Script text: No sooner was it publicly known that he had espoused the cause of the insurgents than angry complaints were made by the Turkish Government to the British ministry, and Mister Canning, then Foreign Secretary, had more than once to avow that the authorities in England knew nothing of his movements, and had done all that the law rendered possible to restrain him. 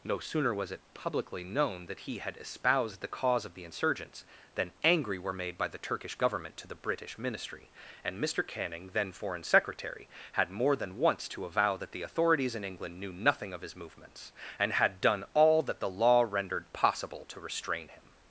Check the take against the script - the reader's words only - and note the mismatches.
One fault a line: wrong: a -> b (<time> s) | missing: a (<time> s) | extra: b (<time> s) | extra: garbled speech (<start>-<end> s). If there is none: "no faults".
missing: complaints (5.2 s)